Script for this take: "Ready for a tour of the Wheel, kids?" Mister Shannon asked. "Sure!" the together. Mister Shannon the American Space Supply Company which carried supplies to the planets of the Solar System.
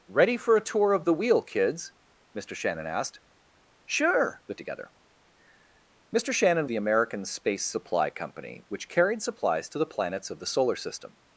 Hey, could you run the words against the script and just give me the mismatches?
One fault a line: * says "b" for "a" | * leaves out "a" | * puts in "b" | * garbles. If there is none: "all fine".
all fine